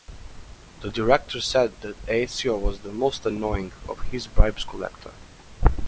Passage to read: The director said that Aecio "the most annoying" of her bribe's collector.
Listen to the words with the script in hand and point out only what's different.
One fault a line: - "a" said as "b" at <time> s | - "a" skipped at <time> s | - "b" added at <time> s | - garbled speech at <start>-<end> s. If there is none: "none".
- "was" added at 2.6 s
- "her" said as "his" at 4.1 s